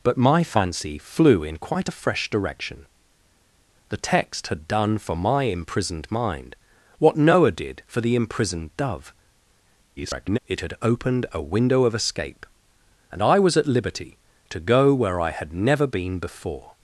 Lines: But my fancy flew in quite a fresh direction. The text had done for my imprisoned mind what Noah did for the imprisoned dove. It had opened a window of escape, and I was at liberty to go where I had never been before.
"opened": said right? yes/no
yes